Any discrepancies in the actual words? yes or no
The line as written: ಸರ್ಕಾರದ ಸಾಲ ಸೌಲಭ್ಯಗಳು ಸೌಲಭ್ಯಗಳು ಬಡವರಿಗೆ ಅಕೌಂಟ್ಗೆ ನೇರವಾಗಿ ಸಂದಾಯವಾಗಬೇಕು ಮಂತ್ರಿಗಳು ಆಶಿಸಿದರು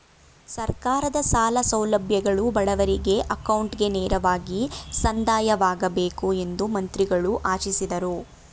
yes